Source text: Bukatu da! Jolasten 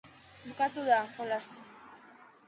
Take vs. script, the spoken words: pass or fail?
pass